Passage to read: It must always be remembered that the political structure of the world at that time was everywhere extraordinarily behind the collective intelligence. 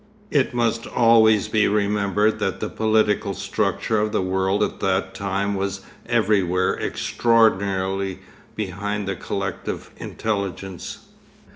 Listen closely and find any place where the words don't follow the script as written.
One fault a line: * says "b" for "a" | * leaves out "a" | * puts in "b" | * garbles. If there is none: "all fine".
all fine